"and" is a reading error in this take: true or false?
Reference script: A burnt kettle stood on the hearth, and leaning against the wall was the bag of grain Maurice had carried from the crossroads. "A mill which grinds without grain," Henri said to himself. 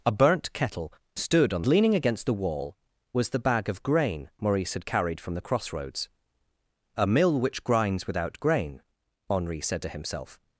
true